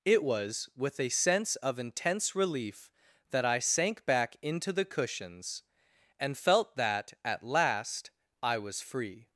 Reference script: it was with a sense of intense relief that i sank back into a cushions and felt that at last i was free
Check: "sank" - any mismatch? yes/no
no